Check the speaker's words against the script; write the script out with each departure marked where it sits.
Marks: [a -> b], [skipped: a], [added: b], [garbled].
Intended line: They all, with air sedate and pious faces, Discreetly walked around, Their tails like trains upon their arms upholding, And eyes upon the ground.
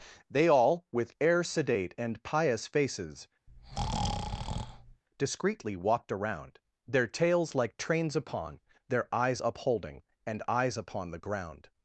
They all, with air sedate and pious faces, Discreetly walked around, Their tails like trains upon their [arms -> eyes] upholding, And eyes upon the ground.